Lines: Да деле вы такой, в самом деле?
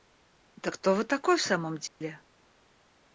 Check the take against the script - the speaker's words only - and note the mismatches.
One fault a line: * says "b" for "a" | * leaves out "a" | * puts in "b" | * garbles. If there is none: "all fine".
* says "кто" for "деле"